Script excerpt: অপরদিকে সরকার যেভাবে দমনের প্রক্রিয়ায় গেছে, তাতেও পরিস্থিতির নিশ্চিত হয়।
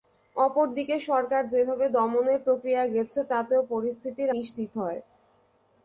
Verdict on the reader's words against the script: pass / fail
pass